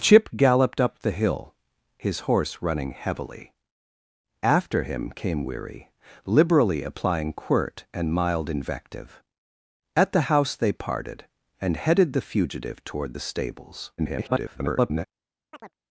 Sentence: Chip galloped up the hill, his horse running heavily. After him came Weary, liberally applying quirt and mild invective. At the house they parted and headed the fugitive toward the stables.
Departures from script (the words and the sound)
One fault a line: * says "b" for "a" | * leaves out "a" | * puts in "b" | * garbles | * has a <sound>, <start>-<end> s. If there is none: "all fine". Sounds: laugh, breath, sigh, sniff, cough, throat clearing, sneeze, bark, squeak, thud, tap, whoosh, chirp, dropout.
* garbles
* has a chirp, 15.5-15.8 s